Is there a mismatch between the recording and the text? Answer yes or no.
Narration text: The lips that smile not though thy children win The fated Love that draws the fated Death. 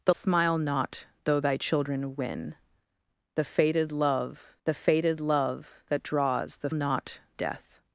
yes